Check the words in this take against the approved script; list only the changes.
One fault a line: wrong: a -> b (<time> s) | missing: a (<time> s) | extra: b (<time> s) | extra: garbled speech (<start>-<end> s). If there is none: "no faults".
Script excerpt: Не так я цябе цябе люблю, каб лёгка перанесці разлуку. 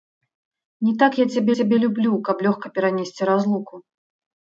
no faults